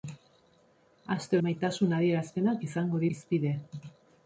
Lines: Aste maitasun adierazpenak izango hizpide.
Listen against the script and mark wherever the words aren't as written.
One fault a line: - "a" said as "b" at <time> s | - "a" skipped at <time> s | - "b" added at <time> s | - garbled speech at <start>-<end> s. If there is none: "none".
none